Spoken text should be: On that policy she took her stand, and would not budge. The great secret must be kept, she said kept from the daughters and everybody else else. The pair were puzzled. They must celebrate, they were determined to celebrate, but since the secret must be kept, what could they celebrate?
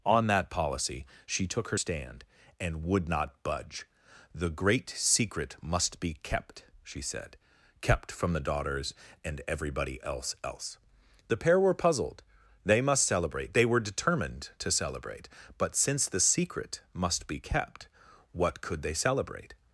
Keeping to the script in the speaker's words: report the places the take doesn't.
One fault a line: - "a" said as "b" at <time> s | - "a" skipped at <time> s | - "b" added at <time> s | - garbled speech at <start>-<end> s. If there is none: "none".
none